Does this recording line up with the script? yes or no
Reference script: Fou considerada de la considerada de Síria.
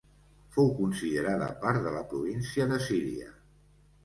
no